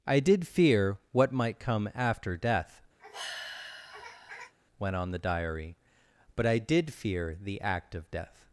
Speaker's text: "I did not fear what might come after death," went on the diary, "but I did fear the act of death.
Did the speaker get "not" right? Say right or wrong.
wrong